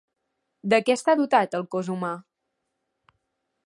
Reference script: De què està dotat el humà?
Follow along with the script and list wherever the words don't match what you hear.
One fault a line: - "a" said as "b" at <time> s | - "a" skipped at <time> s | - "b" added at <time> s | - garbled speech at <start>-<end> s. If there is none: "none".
- "cos" added at 1.8 s